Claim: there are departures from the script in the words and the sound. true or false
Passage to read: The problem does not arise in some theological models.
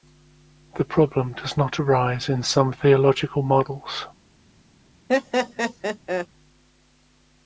true